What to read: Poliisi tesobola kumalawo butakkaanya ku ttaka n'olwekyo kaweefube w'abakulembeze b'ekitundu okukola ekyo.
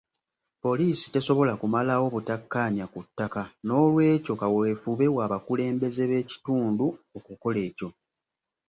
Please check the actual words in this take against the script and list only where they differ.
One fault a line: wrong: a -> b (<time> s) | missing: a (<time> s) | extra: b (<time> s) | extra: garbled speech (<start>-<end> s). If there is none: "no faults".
no faults